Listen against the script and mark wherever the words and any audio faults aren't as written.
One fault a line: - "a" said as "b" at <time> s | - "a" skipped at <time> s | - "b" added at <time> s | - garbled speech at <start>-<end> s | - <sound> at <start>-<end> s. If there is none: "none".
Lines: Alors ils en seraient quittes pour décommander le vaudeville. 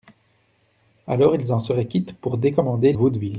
- "le" skipped at 2.9 s